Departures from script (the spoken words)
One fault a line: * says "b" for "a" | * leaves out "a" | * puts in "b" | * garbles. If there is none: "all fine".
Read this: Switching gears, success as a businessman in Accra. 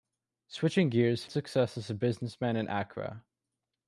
all fine